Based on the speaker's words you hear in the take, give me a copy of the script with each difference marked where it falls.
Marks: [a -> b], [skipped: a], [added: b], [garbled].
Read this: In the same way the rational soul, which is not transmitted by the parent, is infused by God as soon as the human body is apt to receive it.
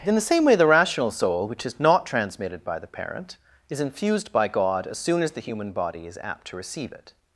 In the same way the rational soul, which is not transmitted by the parent, is infused by God as soon as the human body is apt to receive it.